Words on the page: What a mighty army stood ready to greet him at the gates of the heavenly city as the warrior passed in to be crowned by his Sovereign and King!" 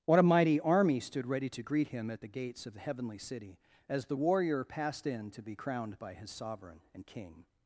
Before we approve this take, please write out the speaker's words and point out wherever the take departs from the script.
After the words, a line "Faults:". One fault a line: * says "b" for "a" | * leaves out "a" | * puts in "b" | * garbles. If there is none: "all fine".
What a mighty army stood ready to greet him at the gates of the heavenly city as the warrior passed in to be crowned by his Sovereign and King!"
Faults:
all fine